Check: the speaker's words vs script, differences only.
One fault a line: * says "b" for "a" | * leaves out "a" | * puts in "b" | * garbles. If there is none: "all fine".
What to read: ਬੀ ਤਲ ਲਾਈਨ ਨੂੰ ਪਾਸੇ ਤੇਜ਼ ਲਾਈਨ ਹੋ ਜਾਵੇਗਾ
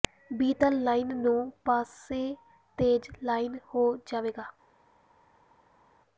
all fine